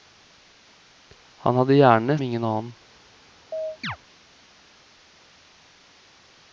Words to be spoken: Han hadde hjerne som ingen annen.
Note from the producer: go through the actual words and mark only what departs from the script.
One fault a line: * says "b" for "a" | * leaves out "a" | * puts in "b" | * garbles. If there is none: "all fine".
* leaves out "som"